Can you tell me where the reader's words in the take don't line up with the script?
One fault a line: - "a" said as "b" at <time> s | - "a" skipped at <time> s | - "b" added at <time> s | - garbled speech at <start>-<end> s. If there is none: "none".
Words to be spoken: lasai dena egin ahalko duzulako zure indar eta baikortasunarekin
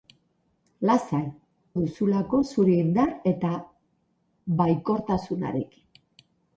- "dena egin ahalko" skipped at 1.2 s